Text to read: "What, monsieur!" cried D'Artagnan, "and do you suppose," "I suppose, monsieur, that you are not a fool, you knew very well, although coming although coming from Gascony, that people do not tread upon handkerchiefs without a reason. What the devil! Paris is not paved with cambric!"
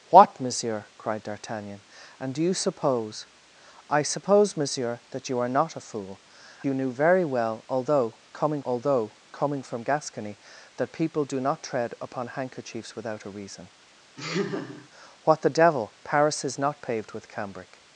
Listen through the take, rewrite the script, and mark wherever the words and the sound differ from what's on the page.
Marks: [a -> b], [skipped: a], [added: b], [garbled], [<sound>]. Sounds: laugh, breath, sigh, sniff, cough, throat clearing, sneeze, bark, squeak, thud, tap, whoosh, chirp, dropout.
"What, monsieur!" cried D'Artagnan, "and do you suppose," "I suppose, monsieur, that you are not a fool, you knew very well, although coming although coming from Gascony, that people do not tread upon handkerchiefs without a reason. [laugh] What the devil! Paris is not paved with cambric!"